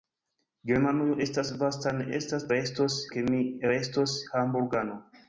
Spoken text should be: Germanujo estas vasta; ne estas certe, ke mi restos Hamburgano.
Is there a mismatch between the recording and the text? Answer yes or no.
yes